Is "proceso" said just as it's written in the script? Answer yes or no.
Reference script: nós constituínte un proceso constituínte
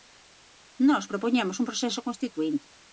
yes